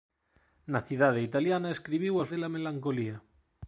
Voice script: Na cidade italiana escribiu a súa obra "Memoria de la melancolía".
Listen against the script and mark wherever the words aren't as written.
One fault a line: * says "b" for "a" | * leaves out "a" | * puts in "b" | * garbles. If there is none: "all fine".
* leaves out "súa obra Memoria"